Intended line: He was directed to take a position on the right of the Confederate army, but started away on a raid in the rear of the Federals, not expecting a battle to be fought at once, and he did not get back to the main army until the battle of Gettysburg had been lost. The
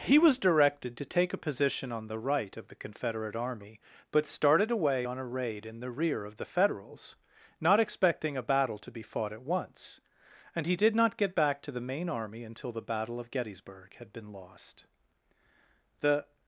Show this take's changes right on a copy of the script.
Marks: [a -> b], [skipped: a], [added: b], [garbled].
He was directed to take a position on the right of the Confederate army, but started away on a raid in the rear of the Federals, not expecting a battle to be fought at once, and he did not get back to the main army until the battle of Gettysburg had been lost. The